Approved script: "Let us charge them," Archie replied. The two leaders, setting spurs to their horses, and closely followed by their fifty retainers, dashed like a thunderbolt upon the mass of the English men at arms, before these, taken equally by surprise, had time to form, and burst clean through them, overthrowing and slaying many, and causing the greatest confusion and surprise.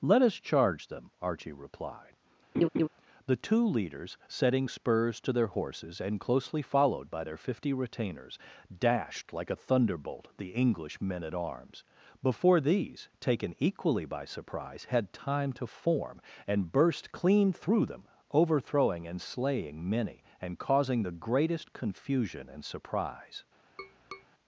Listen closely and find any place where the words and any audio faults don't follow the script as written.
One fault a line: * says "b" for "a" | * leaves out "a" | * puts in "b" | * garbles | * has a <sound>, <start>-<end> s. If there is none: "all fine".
* has a laugh, 2.5-2.9 s
* leaves out "upon the mass of"
* has a tap, 23.8-24.3 s